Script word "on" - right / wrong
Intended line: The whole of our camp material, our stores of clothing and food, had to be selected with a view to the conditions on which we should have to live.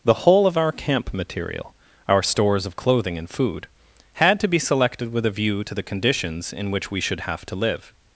wrong